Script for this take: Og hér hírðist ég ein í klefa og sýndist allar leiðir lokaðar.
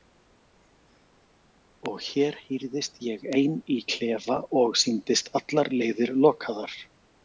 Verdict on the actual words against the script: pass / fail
pass